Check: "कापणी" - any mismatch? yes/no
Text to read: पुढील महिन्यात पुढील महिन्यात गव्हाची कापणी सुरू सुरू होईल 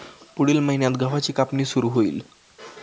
no